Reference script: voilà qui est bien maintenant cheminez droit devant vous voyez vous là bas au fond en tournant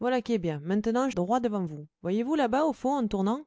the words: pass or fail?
fail